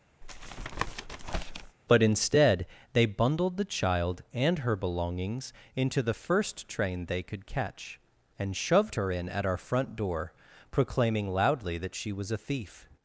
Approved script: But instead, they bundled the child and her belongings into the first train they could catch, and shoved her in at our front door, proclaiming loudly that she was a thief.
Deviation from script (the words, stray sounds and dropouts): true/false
true